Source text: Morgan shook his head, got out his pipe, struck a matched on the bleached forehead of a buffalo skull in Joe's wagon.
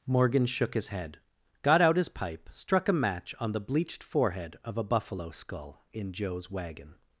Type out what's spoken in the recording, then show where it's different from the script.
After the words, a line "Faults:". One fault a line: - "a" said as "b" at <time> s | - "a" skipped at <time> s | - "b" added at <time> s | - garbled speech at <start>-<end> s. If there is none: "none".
Morgan shook his head, got out his pipe, struck a match on the bleached forehead of a buffalo skull in Joe's wagon.
Faults:
- "matched" said as "match" at 2.9 s